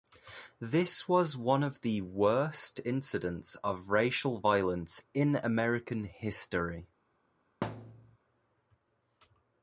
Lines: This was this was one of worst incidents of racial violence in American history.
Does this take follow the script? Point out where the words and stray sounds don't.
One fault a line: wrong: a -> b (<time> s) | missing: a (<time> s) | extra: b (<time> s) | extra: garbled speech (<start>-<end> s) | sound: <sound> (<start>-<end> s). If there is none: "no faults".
missing: this was (1.4 s)
extra: the (1.8 s)
sound: thud (7.6-8.2 s)